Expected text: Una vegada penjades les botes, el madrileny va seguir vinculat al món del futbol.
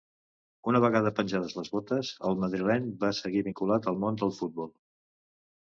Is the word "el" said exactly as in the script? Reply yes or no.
yes